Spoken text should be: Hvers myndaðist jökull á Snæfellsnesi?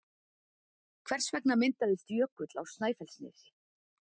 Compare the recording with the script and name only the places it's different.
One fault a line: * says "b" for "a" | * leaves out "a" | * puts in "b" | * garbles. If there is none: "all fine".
* puts in "vegna"